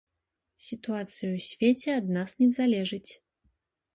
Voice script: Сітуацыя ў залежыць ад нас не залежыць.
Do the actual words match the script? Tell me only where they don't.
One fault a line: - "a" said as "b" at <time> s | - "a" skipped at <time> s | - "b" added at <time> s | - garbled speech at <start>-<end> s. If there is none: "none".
- "залежыць" said as "свеце" at 1.5 s